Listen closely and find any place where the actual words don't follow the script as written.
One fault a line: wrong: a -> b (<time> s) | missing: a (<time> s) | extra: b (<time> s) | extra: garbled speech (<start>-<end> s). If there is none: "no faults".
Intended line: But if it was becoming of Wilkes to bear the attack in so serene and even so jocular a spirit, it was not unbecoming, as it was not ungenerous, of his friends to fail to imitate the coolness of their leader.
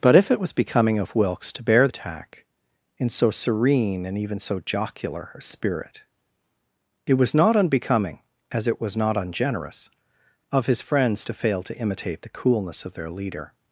missing: the (1.9 s)